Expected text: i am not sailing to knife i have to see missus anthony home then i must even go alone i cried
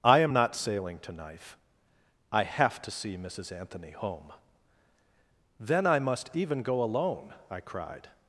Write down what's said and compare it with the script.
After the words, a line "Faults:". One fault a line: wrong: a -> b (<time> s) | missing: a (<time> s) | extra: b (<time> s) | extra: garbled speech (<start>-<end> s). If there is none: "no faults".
i am not sailing to knife i have to see missus anthony home then i must even go alone i cried
Faults:
no faults